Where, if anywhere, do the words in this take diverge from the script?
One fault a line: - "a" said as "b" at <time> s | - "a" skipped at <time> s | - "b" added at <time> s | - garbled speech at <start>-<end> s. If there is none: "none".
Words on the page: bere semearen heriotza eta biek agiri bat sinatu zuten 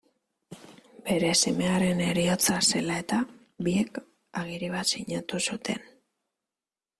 - "zela" added at 2.7 s